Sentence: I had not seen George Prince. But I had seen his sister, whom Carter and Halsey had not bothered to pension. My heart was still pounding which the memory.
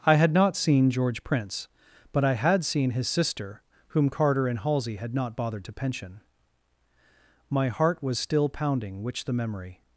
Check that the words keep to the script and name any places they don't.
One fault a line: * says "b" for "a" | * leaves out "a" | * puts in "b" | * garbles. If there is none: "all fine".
all fine